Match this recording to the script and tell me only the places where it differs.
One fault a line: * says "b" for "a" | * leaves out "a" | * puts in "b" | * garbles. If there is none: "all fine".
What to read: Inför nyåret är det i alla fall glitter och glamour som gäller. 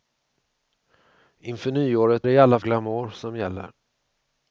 * leaves out "är"
* leaves out "fall glitter och"